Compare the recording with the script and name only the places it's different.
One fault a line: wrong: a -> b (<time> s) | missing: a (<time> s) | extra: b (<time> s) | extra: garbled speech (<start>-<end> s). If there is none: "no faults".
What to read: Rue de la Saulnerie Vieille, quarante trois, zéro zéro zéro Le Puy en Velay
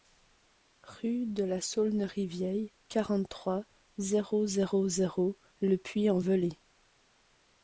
no faults